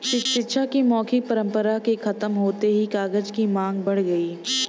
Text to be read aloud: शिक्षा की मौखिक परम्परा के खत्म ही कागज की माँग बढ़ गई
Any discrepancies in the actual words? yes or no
yes